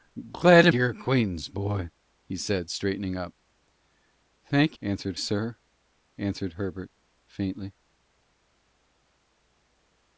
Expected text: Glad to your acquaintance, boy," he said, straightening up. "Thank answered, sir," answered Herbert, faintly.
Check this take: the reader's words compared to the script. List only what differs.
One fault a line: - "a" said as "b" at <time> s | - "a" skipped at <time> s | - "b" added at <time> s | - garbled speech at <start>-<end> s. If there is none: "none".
none